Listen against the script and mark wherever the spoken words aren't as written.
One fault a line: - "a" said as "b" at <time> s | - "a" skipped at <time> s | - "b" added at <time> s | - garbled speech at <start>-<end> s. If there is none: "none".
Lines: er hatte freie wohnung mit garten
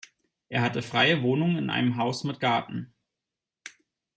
- "in einem haus" added at 1.6 s